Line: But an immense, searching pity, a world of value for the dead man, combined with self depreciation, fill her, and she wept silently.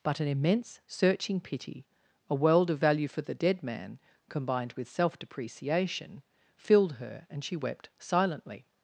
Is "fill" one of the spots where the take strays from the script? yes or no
yes